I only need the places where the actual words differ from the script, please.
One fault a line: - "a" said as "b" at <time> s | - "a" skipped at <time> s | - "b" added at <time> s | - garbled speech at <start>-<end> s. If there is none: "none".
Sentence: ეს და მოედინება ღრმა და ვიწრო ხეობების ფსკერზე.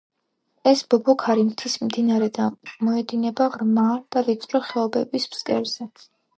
- "ბობოქარი მთის მდინარე" added at 0.9 s